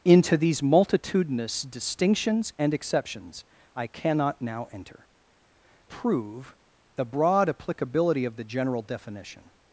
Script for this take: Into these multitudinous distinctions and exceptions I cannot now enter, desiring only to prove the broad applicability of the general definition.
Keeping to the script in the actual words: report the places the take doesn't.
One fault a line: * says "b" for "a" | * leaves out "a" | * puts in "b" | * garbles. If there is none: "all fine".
* leaves out "desiring only to"